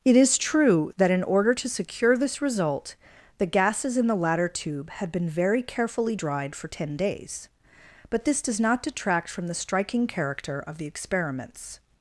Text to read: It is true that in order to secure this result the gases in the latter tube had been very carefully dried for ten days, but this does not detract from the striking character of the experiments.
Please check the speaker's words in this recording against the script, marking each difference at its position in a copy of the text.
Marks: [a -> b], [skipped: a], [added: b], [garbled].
It is true that in order to secure this result the gases in the latter tube had been very carefully dried for ten days, but this does not detract from the striking character of the experiments.